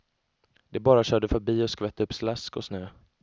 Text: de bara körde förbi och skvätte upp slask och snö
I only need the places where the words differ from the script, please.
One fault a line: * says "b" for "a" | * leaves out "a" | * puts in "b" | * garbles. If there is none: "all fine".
all fine